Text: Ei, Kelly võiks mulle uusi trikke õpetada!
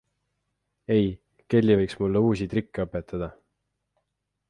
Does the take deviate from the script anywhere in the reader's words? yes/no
no